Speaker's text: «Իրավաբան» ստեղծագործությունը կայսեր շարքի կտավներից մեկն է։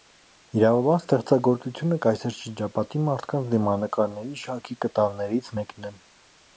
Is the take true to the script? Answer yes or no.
no